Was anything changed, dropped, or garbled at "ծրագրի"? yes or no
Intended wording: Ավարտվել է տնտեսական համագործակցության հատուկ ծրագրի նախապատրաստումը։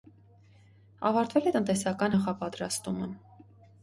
yes